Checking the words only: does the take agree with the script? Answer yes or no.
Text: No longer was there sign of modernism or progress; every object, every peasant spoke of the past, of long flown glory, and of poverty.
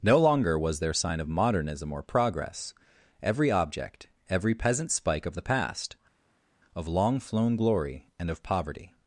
no